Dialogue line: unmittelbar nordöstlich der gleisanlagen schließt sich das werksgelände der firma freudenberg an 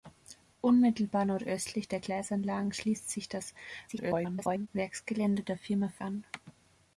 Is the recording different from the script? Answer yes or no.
yes